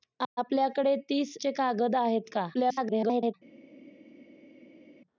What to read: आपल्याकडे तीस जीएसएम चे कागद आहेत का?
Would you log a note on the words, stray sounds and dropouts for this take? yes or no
yes